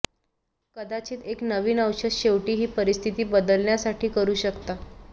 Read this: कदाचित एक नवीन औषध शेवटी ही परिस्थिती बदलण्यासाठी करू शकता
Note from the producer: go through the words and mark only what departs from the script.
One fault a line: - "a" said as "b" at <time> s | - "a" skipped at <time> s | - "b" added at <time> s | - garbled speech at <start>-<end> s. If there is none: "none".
none